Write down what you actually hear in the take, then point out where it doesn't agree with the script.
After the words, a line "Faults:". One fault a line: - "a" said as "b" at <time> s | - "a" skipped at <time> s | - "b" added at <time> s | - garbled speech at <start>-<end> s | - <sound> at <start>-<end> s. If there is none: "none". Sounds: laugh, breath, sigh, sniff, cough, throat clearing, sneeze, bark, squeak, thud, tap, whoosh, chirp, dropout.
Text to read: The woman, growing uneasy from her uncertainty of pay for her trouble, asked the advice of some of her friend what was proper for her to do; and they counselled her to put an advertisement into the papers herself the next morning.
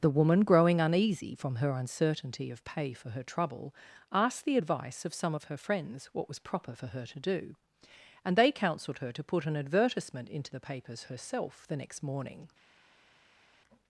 The woman, growing uneasy from her uncertainty of pay for her trouble, asked the advice of some of her friends what was proper for her to do; and they counselled her to put an advertisement into the papers herself the next morning.
Faults:
- "friend" said as "friends" at 5.6 s